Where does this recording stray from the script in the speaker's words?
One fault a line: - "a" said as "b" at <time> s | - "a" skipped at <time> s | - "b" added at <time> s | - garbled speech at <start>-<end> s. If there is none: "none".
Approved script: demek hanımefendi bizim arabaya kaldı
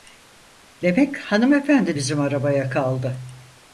none